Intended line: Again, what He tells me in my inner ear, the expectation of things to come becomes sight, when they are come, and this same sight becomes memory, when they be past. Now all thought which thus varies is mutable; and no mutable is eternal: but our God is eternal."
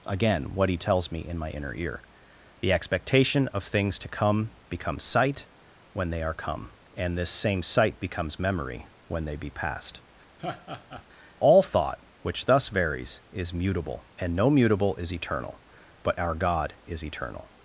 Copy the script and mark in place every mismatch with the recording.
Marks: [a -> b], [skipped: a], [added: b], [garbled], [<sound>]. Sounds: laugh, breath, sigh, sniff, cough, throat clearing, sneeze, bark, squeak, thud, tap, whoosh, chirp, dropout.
Again, what He tells me in my inner ear, the expectation of things to come becomes sight, when they are come, and this same sight becomes memory, when they be past. [skipped: Now] [laugh] all thought which thus varies is mutable; and no mutable is eternal: but our God is eternal."